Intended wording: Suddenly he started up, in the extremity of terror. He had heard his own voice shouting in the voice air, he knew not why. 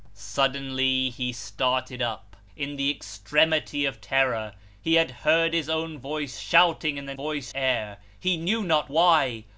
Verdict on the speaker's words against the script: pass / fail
pass